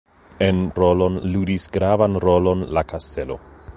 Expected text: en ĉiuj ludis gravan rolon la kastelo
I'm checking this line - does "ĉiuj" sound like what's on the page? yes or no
no